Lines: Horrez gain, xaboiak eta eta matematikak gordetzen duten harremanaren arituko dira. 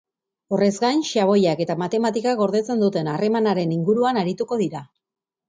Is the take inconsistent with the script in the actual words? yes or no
yes